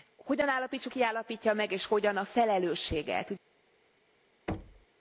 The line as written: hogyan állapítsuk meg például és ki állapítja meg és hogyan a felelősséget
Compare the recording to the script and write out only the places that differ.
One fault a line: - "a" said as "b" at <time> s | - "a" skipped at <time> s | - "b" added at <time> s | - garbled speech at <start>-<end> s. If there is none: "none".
- "meg például és" skipped at 0.9 s